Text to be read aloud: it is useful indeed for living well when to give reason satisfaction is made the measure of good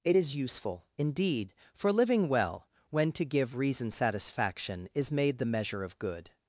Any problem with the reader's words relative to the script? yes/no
no